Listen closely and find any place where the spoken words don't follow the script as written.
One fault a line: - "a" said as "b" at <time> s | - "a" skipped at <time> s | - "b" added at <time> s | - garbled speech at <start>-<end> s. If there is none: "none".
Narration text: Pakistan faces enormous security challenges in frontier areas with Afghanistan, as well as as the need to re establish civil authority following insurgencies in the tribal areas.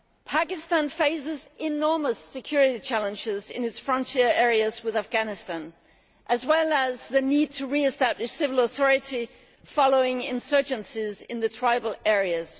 - "its" added at 3.7 s
- "as" skipped at 7.1 s